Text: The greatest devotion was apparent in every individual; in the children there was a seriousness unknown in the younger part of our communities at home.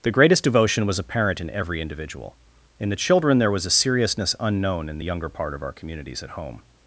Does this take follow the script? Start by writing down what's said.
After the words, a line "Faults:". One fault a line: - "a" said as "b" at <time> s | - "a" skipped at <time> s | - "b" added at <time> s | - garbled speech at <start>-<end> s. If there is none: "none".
The greatest devotion was apparent in every individual; in the children there was a seriousness unknown in the younger part of our communities at home.
Faults:
none